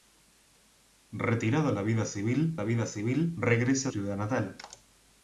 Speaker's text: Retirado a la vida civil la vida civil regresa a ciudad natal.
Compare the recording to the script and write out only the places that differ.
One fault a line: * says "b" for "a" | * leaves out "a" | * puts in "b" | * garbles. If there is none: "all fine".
all fine